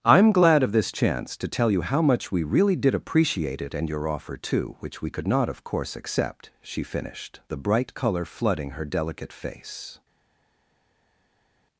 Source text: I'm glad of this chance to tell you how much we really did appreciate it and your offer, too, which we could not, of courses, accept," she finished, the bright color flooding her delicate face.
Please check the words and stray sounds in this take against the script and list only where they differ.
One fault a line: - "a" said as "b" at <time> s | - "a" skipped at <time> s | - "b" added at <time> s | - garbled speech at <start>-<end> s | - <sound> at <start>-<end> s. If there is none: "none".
- "courses" said as "course" at 5.7 s